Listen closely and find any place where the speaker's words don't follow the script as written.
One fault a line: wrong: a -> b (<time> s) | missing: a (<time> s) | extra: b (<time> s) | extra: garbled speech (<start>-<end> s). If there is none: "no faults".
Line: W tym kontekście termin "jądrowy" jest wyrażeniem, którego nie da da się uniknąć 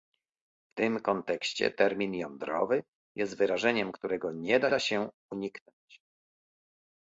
no faults